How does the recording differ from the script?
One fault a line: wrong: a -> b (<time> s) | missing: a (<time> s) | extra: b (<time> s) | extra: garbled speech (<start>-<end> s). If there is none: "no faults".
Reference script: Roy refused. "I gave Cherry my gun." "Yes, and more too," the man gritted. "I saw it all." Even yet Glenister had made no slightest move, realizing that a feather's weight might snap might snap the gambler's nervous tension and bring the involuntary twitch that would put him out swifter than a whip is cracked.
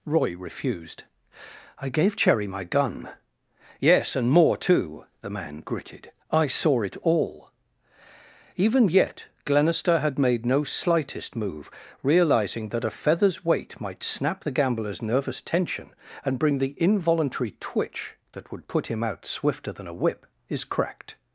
missing: might snap (14.4 s)